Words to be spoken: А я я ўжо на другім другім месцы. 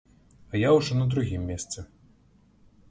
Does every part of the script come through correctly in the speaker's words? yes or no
no